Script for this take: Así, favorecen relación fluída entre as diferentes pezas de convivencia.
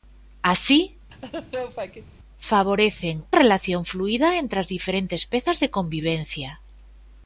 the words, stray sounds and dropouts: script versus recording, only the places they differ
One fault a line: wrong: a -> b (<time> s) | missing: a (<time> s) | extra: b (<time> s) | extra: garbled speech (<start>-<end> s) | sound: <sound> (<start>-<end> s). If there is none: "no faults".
sound: laugh (1.1-2.1 s)